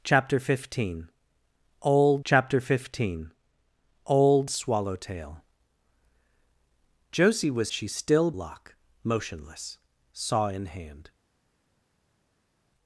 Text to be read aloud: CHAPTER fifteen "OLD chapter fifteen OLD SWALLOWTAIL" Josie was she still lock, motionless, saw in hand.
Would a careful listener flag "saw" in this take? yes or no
no